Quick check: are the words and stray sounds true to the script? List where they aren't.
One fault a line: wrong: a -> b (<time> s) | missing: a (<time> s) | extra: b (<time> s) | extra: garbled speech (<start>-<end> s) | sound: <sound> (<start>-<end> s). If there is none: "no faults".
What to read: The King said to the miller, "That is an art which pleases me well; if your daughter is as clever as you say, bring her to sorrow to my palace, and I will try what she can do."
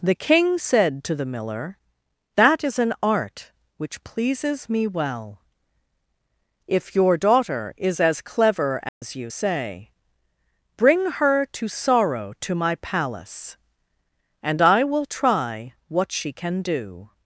sound: dropout (8.9-9.0 s)